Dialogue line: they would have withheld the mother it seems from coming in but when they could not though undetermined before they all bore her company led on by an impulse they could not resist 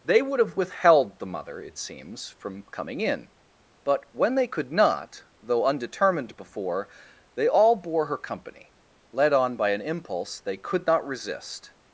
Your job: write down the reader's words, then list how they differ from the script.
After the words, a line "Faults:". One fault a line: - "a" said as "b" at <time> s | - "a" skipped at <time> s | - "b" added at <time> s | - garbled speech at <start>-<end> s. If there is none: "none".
they would have withheld the mother it seems from coming in but when they could not though undetermined before they all bore her company led on by an impulse they could not resist
Faults:
none